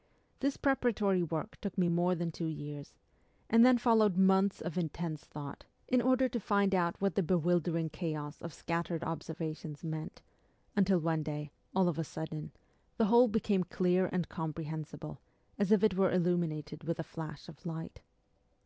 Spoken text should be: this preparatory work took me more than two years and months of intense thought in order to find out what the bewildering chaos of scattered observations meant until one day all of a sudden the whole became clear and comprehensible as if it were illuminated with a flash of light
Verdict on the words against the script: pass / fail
fail